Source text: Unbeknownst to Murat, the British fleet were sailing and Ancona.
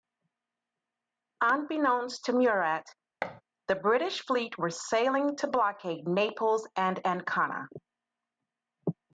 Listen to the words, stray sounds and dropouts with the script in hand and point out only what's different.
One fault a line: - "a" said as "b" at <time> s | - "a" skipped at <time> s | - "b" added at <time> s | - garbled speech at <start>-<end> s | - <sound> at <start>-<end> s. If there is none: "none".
- thud at 3.2-3.4 s
- "to blockade Naples" added at 5.4 s